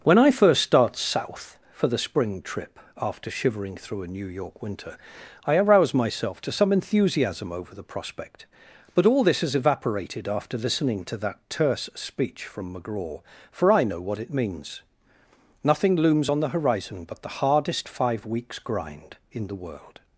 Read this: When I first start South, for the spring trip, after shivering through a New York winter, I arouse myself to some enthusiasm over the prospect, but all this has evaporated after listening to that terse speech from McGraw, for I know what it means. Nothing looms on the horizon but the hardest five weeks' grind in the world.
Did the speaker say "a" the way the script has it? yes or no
yes